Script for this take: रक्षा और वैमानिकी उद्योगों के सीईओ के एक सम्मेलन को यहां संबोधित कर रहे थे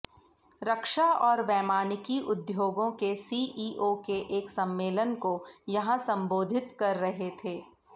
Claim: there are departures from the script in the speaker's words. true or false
false